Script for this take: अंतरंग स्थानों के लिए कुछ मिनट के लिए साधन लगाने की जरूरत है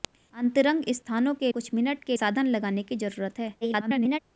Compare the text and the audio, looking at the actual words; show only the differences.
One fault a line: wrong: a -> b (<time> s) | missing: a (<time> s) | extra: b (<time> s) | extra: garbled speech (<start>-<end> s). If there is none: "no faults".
missing: लिए (1.5 s)
missing: लिए (2.2 s)
extra: garbled speech (3.6-4.2 s)